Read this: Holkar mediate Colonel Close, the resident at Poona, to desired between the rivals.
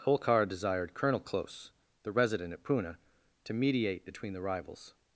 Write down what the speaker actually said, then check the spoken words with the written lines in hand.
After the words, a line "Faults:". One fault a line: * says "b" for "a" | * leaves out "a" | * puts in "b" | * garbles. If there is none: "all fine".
Holkar desired Colonel Close, the resident at Poona, to mediate between the rivals.
Faults:
* says "desired" for "mediate"
* says "mediate" for "desired"